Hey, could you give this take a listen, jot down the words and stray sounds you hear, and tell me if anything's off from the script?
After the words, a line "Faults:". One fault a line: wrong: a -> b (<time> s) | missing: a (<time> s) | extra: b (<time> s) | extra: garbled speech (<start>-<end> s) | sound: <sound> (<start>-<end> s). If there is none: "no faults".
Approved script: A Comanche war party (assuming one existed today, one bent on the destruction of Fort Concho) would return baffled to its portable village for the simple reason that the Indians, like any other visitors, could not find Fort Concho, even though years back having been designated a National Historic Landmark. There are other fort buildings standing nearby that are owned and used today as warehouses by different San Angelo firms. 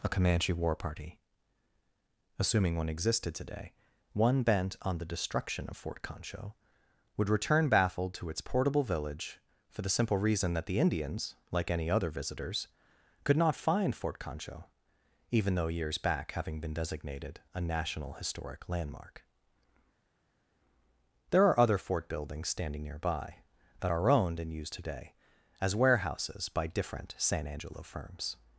A Comanche war party (assuming one existed today, one bent on the destruction of Fort Concho) would return baffled to its portable village for the simple reason that the Indians, like any other visitors, could not find Fort Concho, even though years back having been designated a National Historic Landmark. There are other fort buildings standing nearby that are owned and used today as warehouses by different San Angelo firms.
Faults:
no faults